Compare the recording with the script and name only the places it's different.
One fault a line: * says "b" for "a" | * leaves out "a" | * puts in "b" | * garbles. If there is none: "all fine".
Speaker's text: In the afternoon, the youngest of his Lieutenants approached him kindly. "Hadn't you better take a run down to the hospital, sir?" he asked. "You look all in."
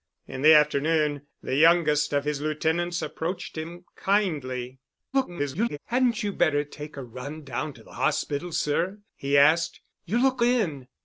* garbles
* leaves out "all"